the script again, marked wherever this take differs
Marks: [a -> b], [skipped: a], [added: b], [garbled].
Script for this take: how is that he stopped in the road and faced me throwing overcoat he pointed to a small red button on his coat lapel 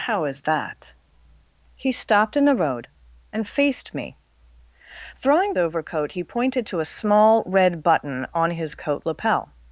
how is that he stopped in the road and faced me throwing overcoat he pointed to a small red button on his coat lapel